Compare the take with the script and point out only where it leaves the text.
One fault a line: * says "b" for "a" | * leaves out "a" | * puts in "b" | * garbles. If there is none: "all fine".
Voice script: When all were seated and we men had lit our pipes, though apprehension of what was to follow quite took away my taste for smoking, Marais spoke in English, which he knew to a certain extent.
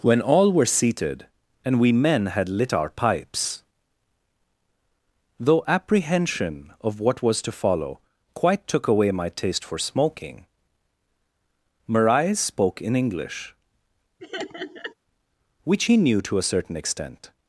all fine